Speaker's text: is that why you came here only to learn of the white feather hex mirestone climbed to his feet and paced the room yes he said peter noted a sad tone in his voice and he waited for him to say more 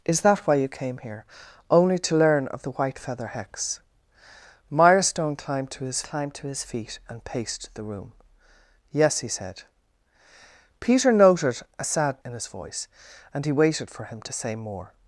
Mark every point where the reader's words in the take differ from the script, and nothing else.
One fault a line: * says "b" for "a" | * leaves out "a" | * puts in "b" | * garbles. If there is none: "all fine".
* puts in "climbed to his"
* leaves out "tone"